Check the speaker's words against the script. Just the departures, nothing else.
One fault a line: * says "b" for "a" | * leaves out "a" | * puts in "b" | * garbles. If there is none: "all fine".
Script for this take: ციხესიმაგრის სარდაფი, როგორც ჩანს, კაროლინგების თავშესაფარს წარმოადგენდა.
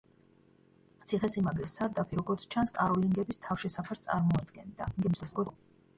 * garbles